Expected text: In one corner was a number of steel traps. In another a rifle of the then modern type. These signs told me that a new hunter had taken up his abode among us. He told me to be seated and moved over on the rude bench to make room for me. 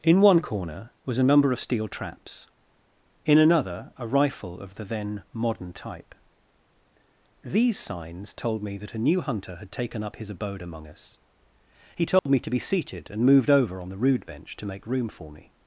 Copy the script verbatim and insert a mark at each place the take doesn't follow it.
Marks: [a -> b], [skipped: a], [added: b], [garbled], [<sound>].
In one corner was a number of steel traps. In another a rifle of the then modern type. These signs told me that a new hunter had taken up his abode among us. He told [dropout] me to be seated and moved over on the rude bench to make room for me.